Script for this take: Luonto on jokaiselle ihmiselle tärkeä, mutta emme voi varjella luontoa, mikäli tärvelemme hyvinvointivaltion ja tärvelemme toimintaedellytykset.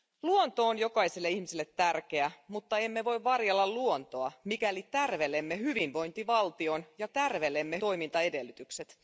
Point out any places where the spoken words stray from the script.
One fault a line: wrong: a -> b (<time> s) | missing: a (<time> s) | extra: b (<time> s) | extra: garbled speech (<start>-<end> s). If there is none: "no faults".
no faults